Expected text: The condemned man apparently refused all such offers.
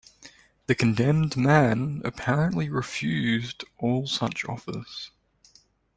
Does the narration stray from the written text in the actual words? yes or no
no